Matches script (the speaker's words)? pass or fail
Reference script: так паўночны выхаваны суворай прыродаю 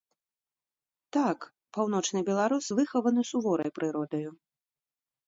fail